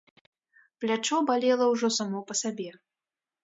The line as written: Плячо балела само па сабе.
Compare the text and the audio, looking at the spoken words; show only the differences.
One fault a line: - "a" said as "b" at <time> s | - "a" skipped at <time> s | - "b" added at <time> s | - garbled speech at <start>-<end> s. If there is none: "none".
- "ўжо" added at 1.8 s